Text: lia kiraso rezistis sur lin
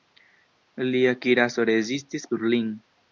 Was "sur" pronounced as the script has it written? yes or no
yes